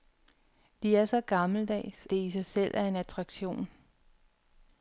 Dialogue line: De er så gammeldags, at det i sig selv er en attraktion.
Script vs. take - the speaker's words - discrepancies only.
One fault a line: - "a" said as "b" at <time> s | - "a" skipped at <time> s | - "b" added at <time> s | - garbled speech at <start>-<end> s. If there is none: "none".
- "at" skipped at 2.1 s